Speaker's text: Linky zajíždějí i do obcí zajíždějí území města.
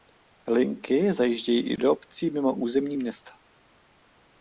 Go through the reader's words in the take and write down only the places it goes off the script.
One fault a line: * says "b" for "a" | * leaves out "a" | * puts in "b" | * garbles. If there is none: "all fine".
* says "mimo" for "zajíždějí"